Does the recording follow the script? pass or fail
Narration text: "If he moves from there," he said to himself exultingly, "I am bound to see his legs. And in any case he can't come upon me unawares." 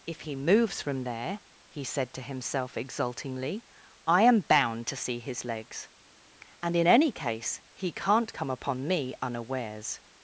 pass